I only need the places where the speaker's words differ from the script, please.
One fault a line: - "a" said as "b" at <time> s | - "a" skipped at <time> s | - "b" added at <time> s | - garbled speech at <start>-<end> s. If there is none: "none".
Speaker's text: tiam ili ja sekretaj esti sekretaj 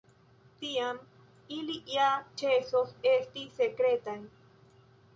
- "sekretaj" said as "ĉesos" at 2.4 s